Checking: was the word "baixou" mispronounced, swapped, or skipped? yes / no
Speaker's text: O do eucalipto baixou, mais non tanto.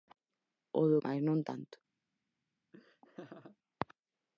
yes